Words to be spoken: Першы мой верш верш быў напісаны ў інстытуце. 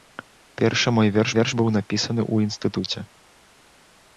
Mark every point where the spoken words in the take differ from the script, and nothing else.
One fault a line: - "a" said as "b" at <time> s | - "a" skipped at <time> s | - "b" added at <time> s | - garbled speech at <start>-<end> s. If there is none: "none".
none